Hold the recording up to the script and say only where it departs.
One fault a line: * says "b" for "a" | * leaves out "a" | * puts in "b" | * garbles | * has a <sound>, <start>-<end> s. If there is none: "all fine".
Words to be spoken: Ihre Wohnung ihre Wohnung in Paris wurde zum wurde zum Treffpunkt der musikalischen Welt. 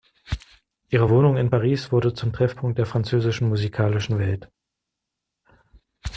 * leaves out "ihre Wohnung"
* leaves out "wurde zum"
* puts in "französischen"